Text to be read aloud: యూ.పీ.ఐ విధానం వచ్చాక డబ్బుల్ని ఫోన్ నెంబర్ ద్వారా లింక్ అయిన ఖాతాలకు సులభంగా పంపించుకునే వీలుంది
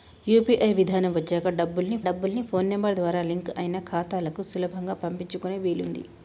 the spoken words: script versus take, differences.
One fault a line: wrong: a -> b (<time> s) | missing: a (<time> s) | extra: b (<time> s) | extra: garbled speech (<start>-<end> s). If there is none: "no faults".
extra: డబ్బుల్ని (2.1 s)